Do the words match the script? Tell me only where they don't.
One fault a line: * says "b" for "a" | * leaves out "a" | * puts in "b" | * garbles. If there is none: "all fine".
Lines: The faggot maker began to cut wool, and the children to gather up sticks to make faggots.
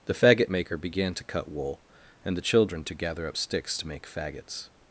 all fine